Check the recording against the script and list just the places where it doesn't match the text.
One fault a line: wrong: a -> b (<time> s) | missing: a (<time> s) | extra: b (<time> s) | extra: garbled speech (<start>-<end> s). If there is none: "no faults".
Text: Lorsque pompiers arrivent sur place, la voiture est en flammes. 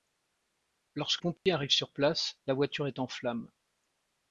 no faults